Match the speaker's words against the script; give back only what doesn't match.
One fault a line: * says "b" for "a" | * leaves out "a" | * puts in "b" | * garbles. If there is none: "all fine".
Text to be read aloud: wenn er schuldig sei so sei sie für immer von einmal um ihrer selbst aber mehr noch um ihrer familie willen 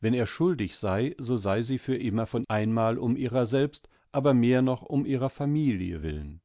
all fine